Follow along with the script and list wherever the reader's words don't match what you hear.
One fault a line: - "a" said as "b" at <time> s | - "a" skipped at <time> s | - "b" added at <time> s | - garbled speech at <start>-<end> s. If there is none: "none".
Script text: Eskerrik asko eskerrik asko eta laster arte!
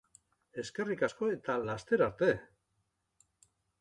- "eskerrik asko" skipped at 1.3 s